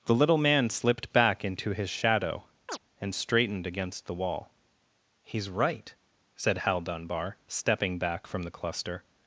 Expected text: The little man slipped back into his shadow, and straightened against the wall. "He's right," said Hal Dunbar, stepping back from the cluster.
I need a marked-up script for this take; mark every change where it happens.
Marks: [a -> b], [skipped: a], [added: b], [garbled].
The little man slipped back into his shadow, and straightened against the wall. "He's right," said Hal Dunbar, stepping back from the cluster.